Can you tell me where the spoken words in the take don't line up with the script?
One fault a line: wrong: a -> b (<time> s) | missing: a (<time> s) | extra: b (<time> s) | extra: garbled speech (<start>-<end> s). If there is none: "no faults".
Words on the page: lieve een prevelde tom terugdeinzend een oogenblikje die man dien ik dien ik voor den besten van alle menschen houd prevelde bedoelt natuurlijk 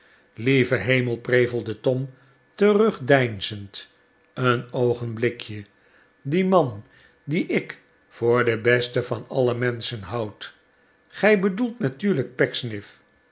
wrong: een -> hemel (0.8 s)
missing: dien ik (7.8 s)
wrong: prevelde -> gij (11.1 s)